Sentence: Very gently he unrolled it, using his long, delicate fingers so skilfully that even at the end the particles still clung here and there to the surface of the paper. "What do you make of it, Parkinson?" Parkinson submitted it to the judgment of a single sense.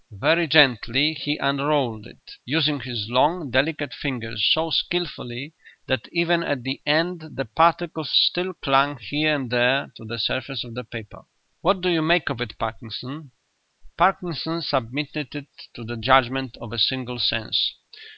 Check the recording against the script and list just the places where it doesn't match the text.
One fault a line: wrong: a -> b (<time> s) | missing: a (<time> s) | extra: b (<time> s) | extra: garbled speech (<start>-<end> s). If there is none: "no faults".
no faults